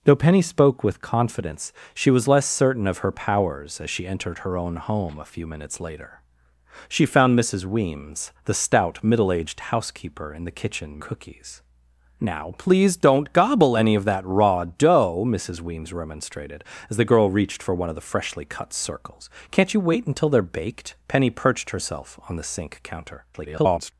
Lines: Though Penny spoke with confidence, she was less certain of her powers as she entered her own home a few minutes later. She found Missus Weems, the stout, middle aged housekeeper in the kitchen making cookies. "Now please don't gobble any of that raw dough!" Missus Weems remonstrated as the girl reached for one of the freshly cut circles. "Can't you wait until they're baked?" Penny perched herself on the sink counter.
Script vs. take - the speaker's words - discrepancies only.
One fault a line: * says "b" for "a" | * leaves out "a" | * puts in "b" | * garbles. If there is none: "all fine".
* leaves out "making"
* garbles